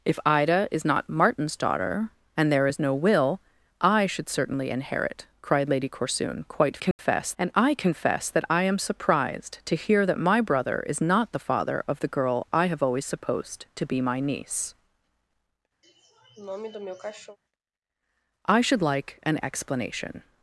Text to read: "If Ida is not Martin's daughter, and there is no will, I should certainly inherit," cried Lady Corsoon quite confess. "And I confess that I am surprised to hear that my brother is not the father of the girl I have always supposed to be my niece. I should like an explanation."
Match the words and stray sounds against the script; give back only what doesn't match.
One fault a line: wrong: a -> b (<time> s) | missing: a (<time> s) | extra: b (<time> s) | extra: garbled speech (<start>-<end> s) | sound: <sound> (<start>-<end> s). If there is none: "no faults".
sound: dropout (6.9-7.0 s)
sound: sniff (15.8-17.4 s)